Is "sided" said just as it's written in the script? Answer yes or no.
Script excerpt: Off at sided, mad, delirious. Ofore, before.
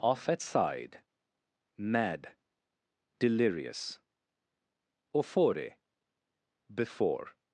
no